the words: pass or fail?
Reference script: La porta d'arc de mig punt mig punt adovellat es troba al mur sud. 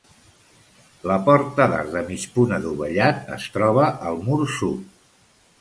fail